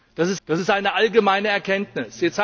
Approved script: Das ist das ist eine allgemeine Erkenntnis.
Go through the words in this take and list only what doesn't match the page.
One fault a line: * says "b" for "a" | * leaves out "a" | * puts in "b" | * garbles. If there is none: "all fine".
all fine